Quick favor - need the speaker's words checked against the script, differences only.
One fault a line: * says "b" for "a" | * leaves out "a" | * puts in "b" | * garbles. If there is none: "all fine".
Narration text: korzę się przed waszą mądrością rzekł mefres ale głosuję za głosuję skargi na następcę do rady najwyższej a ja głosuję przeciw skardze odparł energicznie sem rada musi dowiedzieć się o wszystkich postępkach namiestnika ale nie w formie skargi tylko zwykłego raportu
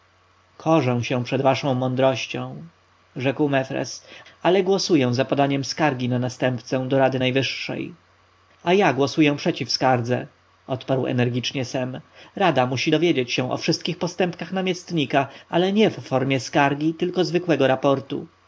* says "podaniem" for "głosuję"